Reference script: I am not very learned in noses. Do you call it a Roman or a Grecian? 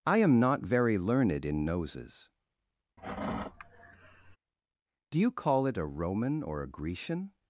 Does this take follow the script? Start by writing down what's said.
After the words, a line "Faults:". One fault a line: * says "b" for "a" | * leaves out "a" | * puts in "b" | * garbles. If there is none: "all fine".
I am not very learned in noses. Do you call it a Roman or a Grecian?
Faults:
all fine